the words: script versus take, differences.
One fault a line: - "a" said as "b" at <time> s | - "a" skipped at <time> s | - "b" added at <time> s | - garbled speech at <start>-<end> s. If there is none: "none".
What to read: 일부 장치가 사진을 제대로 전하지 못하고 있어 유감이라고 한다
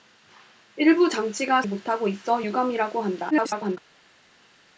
- "사진을 제대로 전하지" skipped at 1.6 s
- garbled speech at 3.3-3.8 s